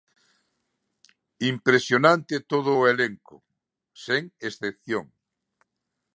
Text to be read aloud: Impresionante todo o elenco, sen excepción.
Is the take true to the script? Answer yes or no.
yes